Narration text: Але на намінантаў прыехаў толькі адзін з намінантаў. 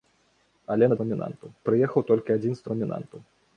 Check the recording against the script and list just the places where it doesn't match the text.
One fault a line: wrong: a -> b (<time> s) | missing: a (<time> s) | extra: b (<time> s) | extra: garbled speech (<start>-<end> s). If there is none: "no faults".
no faults